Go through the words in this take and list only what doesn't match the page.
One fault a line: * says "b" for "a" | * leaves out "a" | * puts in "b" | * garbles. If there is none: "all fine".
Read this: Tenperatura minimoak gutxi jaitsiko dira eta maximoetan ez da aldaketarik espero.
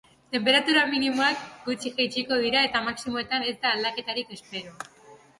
all fine